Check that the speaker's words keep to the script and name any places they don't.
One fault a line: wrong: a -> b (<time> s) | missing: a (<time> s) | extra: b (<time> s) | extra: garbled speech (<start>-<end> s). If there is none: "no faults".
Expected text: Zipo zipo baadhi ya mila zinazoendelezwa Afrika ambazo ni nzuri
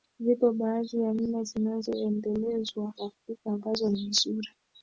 missing: zipo (0.5 s)